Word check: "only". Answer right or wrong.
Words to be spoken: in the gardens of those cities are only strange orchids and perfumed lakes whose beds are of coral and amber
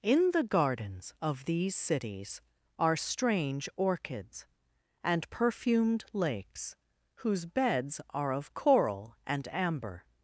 wrong